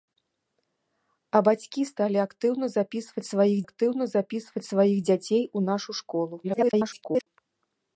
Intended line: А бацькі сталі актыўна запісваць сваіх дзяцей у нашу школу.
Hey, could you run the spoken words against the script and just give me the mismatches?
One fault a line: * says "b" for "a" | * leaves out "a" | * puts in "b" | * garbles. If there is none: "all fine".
* puts in "актыўна запісваць сваіх"
* garbles